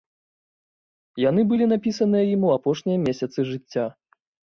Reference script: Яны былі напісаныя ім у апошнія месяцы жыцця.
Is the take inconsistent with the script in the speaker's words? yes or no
no